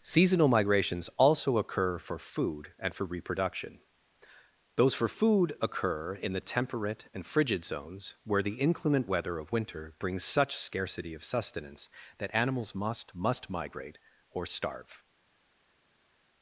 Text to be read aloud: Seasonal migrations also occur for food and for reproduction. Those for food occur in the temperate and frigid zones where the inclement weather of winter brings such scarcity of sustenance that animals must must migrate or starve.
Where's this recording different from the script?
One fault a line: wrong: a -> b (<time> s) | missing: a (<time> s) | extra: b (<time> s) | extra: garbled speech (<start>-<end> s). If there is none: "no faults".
no faults